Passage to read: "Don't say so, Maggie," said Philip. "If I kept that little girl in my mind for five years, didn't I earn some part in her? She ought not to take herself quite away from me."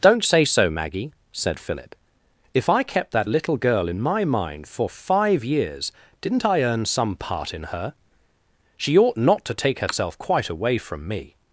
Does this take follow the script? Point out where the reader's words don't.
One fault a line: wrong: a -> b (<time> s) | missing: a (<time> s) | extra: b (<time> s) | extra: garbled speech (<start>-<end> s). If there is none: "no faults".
no faults